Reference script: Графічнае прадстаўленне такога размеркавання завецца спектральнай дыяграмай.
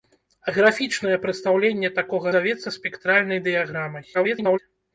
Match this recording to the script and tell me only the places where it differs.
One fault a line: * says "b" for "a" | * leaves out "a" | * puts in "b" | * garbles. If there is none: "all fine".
* leaves out "размеркавання"
* garbles